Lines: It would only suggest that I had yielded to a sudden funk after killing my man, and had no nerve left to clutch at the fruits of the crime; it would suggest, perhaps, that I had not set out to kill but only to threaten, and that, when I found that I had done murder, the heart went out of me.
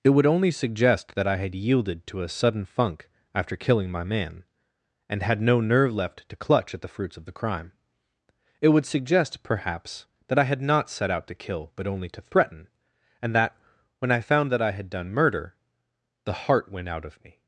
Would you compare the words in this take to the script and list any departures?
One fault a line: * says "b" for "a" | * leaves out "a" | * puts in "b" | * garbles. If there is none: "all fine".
all fine